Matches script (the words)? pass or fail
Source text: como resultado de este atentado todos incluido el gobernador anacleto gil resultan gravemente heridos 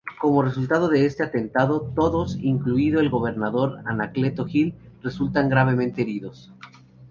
pass